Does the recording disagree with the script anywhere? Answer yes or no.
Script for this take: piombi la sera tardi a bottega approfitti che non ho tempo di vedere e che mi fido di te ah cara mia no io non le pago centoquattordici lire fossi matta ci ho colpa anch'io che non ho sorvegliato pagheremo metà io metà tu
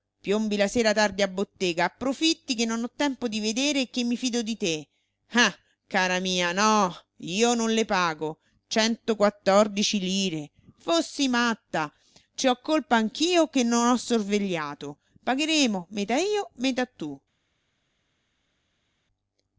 no